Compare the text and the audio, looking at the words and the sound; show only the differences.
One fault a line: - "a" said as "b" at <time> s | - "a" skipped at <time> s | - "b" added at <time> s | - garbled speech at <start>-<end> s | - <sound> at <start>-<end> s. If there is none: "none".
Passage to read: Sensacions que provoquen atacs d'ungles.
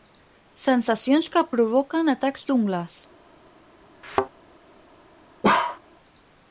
- thud at 4.0-4.3 s
- bark at 5.4-5.8 s